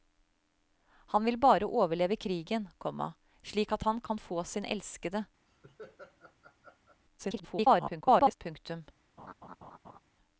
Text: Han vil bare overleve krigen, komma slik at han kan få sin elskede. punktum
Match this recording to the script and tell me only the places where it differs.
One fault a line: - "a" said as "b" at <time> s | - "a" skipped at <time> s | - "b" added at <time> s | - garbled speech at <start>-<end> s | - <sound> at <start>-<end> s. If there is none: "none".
- laugh at 5.5-7.0 s
- garbled speech at 7.2-8.4 s
- laugh at 9.2-10.0 s